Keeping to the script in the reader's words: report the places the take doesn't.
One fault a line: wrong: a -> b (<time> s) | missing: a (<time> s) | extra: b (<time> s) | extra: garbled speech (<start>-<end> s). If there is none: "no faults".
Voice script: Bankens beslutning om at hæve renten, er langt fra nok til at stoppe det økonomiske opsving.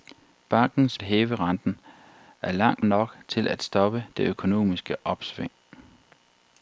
missing: beslutning om at (1.0 s)
missing: fra (2.9 s)